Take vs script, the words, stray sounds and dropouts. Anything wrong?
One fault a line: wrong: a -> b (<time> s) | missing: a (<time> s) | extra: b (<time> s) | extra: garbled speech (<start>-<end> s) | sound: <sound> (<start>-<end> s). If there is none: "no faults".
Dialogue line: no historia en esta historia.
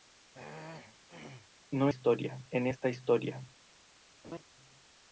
sound: throat clearing (0.3-1.5 s)
sound: laugh (4.2-4.4 s)